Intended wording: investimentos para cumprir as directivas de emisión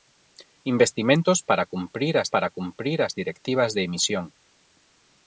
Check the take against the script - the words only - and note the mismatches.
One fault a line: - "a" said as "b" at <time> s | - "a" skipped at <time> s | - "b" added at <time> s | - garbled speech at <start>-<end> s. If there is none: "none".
- "para cumprir as" added at 2.3 s